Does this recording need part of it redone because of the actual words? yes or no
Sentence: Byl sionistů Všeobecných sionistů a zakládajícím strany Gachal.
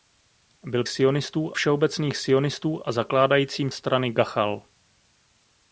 no